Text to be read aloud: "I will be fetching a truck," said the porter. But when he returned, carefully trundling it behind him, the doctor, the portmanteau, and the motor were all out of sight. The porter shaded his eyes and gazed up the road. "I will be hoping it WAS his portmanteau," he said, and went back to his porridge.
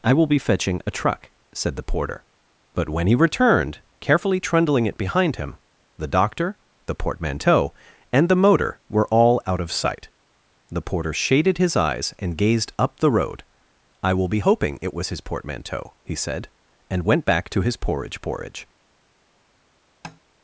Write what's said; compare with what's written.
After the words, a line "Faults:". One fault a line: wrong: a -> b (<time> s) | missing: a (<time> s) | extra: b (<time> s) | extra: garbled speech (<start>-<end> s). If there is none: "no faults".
"I will be fetching a truck," said the porter. But when he returned, carefully trundling it behind him, the doctor, the portmanteau, and the motor were all out of sight. The porter shaded his eyes and gazed up the road. "I will be hoping it WAS his portmanteau," he said, and went back to his porridge porridge.
Faults:
extra: porridge (18.2 s)